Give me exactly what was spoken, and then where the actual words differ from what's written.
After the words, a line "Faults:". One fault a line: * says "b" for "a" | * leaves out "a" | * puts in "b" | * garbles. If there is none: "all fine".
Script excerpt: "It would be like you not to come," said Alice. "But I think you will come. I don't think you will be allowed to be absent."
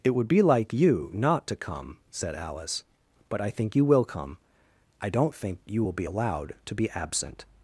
"It would be like you not to come," said Alice. "But I think you will come. I don't think you will be allowed to be absent."
Faults:
all fine